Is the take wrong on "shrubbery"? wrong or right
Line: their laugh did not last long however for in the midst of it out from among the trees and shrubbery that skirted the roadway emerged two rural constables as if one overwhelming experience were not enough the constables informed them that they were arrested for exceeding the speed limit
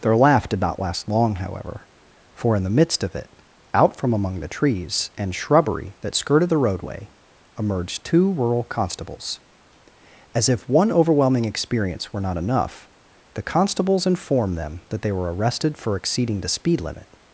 right